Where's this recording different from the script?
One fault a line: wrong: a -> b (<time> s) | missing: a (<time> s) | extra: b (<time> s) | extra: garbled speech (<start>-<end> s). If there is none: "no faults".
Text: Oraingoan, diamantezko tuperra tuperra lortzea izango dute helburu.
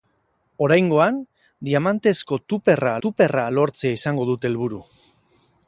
no faults